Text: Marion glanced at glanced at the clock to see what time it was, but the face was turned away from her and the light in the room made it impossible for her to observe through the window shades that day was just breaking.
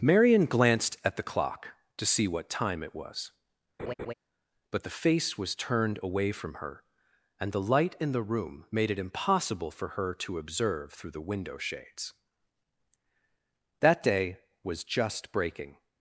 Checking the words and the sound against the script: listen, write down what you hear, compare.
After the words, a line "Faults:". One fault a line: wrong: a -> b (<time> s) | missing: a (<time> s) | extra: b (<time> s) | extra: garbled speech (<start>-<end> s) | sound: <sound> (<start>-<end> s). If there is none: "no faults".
Marion glanced at the clock to see what time it was, but the face was turned away from her and the light in the room made it impossible for her to observe through the window shades that day was just breaking.
Faults:
missing: glanced at (1.1 s)
sound: laugh (3.8-4.1 s)